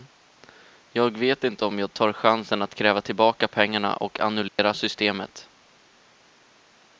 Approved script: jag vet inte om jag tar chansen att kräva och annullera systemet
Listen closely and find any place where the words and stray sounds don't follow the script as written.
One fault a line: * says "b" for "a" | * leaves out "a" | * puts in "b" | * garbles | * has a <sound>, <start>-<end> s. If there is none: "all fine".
* puts in "tillbaka pengarna"
* has a dropout, 4.5-4.6 s